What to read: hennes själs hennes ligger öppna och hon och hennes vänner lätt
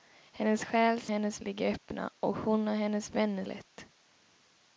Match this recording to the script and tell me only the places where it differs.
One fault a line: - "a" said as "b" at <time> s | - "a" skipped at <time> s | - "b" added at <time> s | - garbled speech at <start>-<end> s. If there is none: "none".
none